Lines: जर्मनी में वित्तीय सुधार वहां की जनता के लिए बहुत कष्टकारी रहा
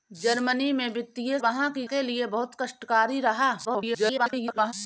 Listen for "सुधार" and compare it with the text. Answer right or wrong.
wrong